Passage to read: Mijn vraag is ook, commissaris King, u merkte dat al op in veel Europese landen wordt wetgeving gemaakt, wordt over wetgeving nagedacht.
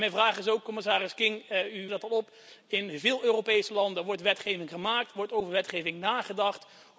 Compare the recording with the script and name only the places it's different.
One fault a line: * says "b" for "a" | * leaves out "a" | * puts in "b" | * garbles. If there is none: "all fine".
* leaves out "merkte"